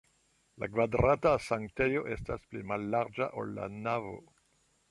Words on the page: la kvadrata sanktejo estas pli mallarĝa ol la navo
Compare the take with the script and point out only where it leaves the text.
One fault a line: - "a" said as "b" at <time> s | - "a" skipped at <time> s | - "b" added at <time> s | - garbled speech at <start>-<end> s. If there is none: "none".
none